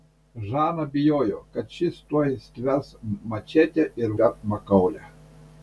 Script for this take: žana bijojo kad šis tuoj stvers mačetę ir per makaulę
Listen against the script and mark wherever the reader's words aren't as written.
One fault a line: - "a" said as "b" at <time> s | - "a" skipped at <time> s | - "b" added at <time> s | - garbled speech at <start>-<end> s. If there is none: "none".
none